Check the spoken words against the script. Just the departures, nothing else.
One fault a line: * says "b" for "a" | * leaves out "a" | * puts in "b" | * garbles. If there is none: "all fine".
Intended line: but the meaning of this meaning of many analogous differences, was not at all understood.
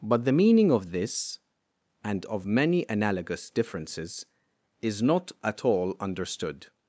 * says "and" for "meaning"
* says "is" for "was"